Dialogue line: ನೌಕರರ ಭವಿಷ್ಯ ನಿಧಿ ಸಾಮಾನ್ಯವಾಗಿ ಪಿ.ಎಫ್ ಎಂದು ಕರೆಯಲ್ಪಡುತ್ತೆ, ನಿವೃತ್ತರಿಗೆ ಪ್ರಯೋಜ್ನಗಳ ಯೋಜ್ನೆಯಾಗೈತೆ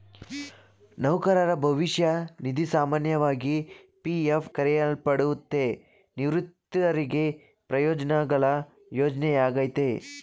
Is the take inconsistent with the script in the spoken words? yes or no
yes